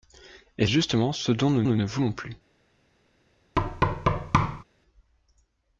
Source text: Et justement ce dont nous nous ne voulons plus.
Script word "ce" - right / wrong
right